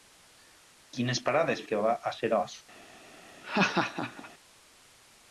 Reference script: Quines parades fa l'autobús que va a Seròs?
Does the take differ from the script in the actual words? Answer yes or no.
yes